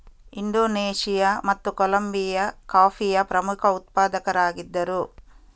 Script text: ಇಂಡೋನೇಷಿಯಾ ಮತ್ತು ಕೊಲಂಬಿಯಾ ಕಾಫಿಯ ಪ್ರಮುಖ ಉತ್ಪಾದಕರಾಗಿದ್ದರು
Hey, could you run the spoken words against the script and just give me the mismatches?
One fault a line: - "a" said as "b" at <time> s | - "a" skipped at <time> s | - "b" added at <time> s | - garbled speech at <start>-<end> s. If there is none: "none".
none